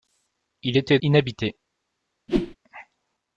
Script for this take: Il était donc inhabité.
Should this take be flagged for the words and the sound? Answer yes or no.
yes